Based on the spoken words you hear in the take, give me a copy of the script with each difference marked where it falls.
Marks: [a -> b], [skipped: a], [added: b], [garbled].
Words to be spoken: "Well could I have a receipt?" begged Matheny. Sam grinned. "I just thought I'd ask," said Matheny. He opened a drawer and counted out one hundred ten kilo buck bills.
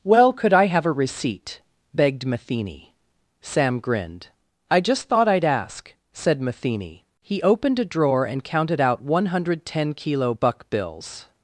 "Well could I have a receipt?" begged Matheny. Sam grinned. "I just thought I'd ask," said Matheny. He opened a drawer and counted out one hundred ten kilo buck bills.